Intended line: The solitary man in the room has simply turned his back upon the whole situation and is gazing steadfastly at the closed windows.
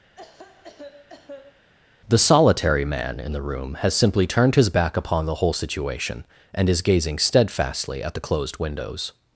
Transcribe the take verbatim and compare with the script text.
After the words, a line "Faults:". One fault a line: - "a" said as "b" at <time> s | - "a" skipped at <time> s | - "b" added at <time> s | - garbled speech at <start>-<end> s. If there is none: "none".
The solitary man in the room has simply turned his back upon the whole situation and is gazing steadfastly at the closed windows.
Faults:
none